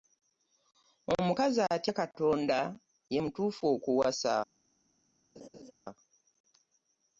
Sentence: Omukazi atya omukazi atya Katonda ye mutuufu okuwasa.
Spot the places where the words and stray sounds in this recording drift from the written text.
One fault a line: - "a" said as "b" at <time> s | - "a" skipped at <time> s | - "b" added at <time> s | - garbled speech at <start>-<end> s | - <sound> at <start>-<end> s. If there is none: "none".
- "omukazi atya" skipped at 1.9 s
- laugh at 5.4-5.7 s